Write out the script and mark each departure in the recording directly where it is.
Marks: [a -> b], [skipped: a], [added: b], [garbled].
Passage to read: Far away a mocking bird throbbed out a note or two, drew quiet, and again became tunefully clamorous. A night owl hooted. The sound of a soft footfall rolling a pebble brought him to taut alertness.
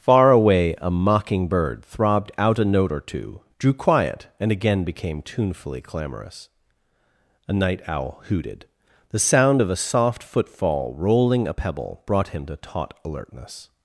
Far away a mocking bird throbbed out a note or two, drew quiet, and again became tunefully clamorous. A night owl hooted. The sound of a soft footfall rolling a pebble brought him to taut alertness.